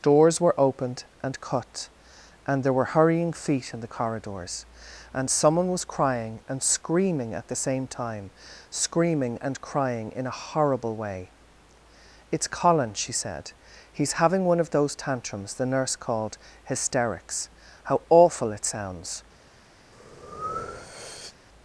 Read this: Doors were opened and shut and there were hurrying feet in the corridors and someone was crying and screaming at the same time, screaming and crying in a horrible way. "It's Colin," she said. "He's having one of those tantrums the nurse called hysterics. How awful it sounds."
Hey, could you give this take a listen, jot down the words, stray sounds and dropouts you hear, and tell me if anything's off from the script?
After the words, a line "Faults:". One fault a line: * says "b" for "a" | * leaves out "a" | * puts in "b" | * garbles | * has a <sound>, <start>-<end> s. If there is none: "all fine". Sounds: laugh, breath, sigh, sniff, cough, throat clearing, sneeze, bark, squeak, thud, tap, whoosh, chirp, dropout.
Doors were opened and cut and there were hurrying feet in the corridors and someone was crying and screaming at the same time, screaming and crying in a horrible way. "It's Colin," she said. "He's having one of those tantrums the nurse called hysterics. How awful it sounds."
Faults:
* says "cut" for "shut"
* has a breath, 19.9-21.3 s